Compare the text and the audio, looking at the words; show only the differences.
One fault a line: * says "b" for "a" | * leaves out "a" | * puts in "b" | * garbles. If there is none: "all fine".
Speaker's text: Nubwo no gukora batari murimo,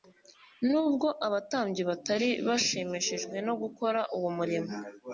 * puts in "abatambyi batari bashimishijwe"
* says "uwo" for "batari"